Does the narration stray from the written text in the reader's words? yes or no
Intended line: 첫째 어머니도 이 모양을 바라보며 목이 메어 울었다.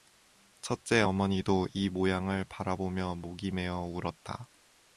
no